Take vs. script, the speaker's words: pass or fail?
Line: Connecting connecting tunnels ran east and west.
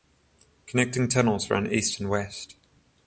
fail